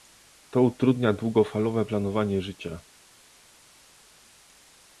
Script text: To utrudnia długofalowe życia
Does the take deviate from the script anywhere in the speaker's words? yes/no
yes